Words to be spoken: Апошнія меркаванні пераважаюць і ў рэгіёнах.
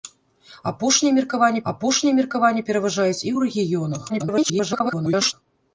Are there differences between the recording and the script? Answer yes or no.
yes